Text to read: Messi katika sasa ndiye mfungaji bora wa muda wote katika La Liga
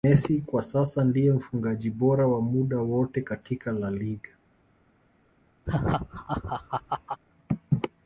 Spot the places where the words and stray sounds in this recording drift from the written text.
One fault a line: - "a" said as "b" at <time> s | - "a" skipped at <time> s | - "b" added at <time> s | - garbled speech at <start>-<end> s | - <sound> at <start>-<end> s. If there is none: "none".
- "katika" said as "kwa" at 0.4 s
- laugh at 5.7-7.2 s